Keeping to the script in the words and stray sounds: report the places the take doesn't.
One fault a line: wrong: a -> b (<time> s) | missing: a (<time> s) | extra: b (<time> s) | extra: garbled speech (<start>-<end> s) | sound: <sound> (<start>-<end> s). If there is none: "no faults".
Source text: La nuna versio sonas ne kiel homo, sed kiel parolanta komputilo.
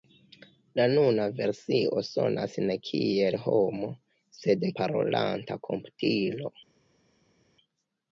missing: kiel (4.7 s)